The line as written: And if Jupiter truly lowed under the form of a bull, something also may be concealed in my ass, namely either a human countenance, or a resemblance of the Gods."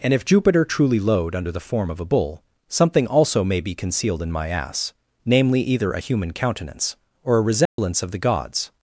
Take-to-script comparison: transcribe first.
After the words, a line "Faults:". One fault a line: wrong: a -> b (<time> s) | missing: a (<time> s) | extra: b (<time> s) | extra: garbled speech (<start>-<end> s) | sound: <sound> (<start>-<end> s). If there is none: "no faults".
And if Jupiter truly lowed under the form of a bull, something also may be concealed in my ass, namely either a human countenance, or a resemblance of the Gods."
Faults:
sound: dropout (7.7-7.8 s)